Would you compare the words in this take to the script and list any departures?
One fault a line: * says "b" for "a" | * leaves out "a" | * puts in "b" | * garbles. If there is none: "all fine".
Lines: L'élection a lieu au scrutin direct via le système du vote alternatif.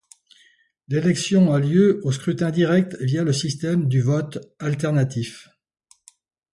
all fine